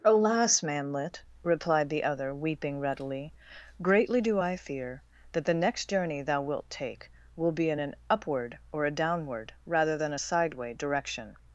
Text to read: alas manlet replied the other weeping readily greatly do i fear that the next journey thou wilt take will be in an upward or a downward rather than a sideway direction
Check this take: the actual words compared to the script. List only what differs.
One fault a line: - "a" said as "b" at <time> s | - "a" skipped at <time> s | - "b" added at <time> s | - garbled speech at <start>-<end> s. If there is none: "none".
none